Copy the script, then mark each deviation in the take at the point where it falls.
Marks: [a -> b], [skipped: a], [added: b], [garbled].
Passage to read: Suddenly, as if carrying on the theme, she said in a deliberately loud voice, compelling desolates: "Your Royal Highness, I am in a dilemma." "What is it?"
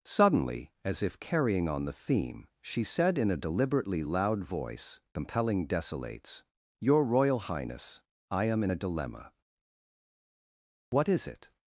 Suddenly, as if carrying on the theme, she said in a deliberately loud voice, compelling desolates: "Your Royal Highness, I am in a dilemma." "What is it?"